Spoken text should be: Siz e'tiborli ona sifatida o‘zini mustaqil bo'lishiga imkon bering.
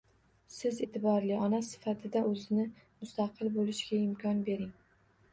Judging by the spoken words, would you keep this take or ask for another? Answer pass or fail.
pass